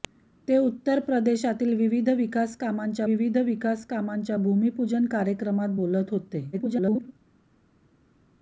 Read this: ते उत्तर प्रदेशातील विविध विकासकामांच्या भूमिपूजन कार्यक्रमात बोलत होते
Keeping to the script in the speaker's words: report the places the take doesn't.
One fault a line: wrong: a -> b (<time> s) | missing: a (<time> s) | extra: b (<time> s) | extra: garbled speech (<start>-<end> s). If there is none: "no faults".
extra: विविध विकासकामांच्या (3.0 s)
extra: garbled speech (6.5-7.1 s)